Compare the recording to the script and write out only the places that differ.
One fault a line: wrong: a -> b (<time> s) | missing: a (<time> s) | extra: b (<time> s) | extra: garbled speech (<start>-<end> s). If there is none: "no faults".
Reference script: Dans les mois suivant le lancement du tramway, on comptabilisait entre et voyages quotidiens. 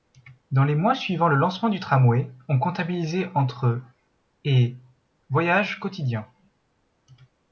no faults